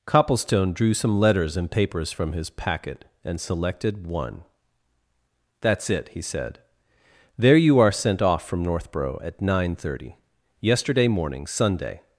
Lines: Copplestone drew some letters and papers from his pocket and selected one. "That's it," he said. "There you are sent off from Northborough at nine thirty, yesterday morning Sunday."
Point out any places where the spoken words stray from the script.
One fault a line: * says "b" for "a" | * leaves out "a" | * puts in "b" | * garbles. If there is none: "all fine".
* says "packet" for "pocket"